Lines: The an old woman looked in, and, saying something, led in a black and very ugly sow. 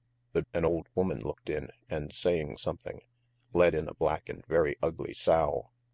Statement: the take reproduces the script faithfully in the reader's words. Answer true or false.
true